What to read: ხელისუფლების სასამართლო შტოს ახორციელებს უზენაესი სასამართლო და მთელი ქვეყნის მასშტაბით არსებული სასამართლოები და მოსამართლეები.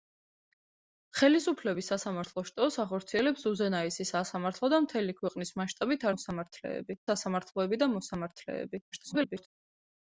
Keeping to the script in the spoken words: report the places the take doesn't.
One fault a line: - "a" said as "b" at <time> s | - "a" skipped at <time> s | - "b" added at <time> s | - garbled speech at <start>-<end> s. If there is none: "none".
- "არსებული" said as "მოსამართლეები" at 6.1 s
- garbled speech at 8.9-9.5 s